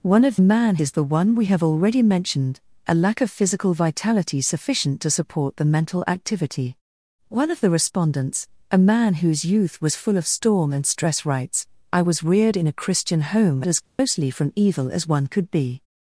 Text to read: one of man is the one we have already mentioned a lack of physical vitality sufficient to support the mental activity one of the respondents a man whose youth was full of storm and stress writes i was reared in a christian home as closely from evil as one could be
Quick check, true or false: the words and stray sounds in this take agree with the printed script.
false